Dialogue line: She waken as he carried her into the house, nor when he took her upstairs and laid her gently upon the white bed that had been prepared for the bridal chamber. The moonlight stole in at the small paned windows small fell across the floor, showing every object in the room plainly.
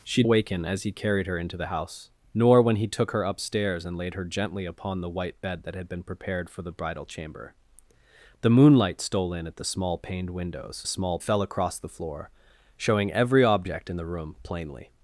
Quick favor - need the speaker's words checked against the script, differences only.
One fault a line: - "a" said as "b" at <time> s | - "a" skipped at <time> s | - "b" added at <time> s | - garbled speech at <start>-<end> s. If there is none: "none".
none